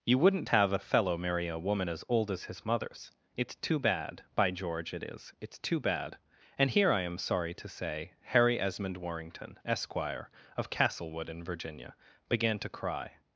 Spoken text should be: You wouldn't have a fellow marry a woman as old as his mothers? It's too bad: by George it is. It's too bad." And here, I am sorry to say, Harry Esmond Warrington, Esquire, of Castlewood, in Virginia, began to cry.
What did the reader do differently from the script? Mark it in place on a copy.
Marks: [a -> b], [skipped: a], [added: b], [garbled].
You wouldn't have a fellow marry a woman as old as his mothers? It's too bad: by George it is. It's too bad." And here, I am sorry to say, Harry Esmond Warrington, Esquire, of Castlewood, in Virginia, began to cry.